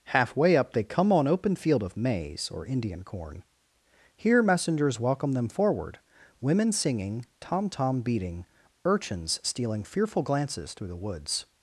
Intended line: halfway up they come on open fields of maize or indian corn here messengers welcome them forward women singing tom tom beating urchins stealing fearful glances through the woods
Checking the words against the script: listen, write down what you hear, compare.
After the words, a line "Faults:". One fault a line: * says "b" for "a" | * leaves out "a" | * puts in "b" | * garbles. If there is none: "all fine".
halfway up they come on open field of maize or indian corn here messengers welcome them forward women singing tom tom beating urchins stealing fearful glances through the woods
Faults:
* says "field" for "fields"